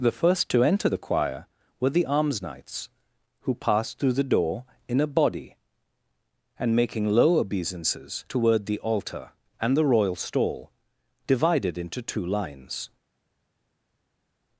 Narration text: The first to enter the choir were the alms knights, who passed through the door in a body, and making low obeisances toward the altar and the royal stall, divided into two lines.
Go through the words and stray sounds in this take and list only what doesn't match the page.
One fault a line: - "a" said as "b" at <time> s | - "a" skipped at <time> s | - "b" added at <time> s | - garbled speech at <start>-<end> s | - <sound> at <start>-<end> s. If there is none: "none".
none